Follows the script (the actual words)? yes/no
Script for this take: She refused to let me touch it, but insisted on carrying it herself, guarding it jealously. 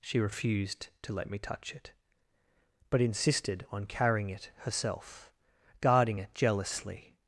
yes